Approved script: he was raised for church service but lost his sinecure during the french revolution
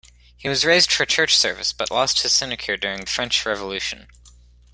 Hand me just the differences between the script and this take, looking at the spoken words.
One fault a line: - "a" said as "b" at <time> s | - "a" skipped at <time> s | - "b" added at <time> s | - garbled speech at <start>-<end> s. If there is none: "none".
none